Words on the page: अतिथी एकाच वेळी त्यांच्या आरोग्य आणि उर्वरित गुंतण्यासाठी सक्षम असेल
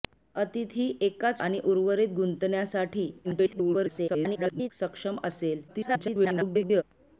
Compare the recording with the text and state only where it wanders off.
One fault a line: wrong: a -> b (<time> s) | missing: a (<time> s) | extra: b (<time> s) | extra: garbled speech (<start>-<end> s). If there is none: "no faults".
missing: वेळी त्यांच्या आरोग्य (1.4 s)
extra: garbled speech (3.2-4.7 s)
extra: garbled speech (5.7-6.8 s)